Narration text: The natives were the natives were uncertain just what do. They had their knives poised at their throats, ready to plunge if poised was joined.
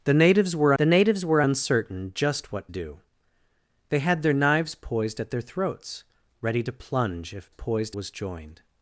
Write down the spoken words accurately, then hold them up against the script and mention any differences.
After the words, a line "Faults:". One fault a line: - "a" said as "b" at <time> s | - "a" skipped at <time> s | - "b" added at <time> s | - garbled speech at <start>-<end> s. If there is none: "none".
The natives were the natives were uncertain just what do. They had their knives poised at their throats, ready to plunge if poised was joined.
Faults:
none